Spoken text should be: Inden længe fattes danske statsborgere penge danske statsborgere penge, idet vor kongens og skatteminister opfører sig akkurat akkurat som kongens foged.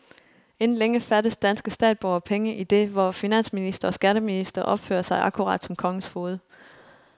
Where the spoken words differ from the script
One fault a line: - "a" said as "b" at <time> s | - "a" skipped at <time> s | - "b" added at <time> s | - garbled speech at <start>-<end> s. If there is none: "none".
- "danske statsborgere penge" skipped at 2.5 s
- "kongens" said as "finansminister" at 3.1 s
- "akkurat" skipped at 5.6 s